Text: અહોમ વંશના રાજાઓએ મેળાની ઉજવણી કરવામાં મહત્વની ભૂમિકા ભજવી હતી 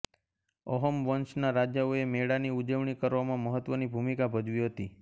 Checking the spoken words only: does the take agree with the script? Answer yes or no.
yes